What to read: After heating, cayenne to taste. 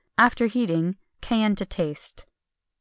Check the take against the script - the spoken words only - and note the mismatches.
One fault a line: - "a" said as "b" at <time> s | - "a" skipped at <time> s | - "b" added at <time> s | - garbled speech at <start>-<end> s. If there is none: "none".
none